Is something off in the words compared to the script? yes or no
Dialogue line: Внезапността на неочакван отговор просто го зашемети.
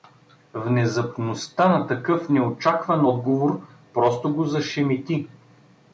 yes